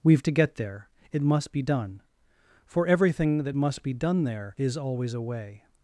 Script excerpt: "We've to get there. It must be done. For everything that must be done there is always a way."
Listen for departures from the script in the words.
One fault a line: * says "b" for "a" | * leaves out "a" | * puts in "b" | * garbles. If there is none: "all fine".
all fine